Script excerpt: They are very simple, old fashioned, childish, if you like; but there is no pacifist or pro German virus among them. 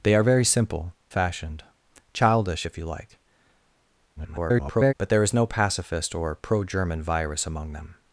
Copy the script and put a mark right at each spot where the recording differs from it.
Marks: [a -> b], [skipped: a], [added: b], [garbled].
They are very simple, [skipped: old] fashioned, childish, if you like; [garbled] but there is no pacifist or pro German virus among them.